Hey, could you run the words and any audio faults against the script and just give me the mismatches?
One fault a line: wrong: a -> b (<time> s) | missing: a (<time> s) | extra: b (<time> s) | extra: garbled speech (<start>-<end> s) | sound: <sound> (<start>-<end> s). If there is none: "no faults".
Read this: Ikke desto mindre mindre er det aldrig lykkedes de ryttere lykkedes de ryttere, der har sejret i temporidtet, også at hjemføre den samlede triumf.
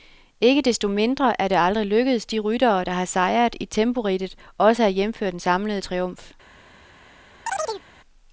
missing: mindre (1.4 s)
missing: lykkedes de ryttere (2.8 s)
sound: chirp (7.5-7.8 s)